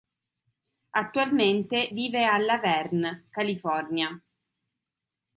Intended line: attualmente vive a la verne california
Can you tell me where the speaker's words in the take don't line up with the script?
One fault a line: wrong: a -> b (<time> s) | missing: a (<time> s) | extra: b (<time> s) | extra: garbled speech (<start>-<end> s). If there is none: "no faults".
no faults